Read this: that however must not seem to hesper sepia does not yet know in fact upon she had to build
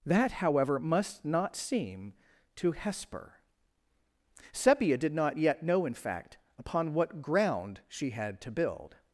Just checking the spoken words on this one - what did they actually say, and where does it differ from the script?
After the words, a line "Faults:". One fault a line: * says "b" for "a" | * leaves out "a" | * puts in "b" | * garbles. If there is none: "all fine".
that however must not seem to hesper sepia did not yet know in fact upon what ground she had to build
Faults:
* says "did" for "does"
* puts in "what ground"